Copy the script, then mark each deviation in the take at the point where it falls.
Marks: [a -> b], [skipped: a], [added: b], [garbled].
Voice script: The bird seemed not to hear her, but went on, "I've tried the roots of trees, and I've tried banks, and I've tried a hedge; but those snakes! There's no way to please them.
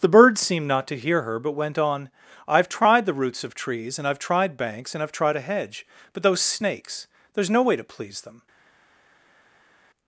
The bird seemed not to hear her, but went on, "I've tried the roots of trees, and I've tried banks, and I've tried a hedge; but those snakes! There's no way to please them.